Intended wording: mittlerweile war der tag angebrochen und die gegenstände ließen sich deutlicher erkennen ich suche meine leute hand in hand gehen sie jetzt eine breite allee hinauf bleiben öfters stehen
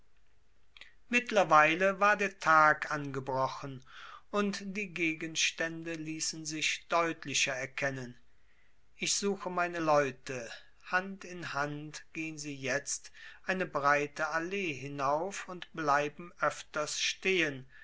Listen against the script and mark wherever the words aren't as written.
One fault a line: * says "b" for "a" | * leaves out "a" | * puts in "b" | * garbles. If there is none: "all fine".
* puts in "und"